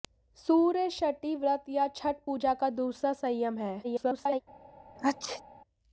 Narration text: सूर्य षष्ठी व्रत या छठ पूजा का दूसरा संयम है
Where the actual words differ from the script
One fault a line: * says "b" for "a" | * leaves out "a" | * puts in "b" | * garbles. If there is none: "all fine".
* garbles